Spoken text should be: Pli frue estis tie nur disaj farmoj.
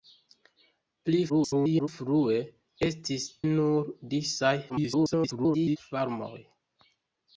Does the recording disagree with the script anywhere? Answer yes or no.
yes